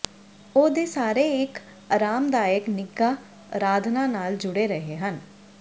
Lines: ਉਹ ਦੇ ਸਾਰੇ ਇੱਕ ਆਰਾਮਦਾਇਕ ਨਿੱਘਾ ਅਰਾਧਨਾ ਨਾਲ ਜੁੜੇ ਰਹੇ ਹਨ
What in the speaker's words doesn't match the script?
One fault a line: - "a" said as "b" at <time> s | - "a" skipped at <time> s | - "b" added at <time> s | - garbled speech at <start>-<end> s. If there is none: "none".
none